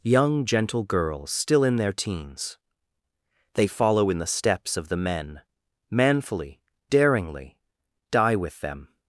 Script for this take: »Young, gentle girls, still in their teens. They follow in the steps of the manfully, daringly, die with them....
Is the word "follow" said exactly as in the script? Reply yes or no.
yes